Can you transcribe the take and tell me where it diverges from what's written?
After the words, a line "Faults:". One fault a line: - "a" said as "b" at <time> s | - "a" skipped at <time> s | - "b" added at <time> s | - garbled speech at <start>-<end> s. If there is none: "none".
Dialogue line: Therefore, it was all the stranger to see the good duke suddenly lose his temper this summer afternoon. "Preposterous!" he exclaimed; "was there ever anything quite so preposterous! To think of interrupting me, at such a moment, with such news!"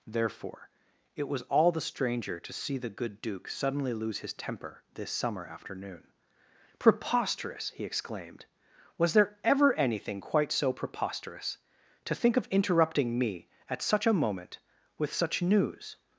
Therefore, it was all the stranger to see the good duke suddenly lose his temper this summer afternoon. "Preposterous!" he exclaimed; "was there ever anything quite so preposterous! To think of interrupting me, at such a moment, with such news!"
Faults:
none